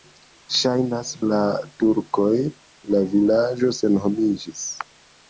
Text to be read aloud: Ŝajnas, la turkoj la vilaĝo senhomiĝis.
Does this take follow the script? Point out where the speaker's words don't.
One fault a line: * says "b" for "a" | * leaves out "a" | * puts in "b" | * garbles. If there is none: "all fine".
all fine